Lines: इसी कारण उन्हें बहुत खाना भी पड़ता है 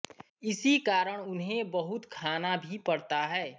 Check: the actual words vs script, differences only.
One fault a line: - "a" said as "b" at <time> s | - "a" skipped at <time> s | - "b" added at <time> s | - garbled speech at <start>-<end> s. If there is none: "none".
none